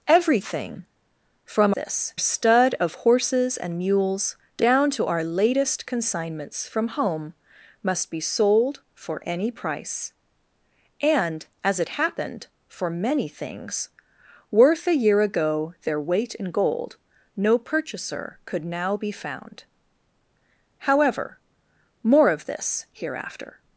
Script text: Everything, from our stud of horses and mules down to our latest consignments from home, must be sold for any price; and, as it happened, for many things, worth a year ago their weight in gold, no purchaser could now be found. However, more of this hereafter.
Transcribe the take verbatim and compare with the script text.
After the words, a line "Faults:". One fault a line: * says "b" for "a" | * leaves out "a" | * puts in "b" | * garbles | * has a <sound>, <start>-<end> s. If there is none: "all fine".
Everything, from this stud of horses and mules down to our latest consignments from home, must be sold for any price; and, as it happened, for many things, worth a year ago their weight in gold, no purchaser could now be found. However, more of this hereafter.
Faults:
* says "this" for "our"